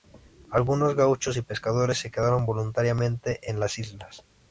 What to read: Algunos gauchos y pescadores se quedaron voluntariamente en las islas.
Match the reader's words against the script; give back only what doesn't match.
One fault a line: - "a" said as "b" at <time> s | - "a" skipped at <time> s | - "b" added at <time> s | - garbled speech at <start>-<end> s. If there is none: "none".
none